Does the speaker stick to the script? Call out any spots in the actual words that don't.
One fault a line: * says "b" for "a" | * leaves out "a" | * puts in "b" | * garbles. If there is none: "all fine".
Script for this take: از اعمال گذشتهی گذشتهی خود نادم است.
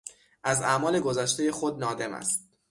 * leaves out "گذشتهی"